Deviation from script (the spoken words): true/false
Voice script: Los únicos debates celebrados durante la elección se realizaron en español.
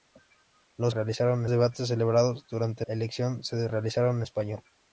true